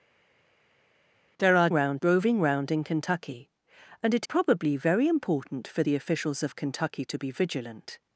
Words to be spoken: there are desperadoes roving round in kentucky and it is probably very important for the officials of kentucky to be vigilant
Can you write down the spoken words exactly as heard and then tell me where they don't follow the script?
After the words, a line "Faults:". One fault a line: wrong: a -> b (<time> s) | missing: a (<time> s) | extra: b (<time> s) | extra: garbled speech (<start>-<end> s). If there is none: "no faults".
there are round roving round in kentucky and it probably very important for the officials of kentucky to be vigilant
Faults:
wrong: desperadoes -> round (1.7 s)
missing: is (4.3 s)